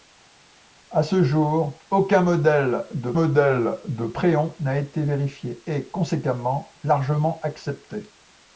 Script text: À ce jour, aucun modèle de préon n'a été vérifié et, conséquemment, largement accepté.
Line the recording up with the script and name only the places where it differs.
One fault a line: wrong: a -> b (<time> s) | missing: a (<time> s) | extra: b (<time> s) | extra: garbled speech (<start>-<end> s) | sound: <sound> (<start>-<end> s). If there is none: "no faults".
extra: modèle de (3.1 s)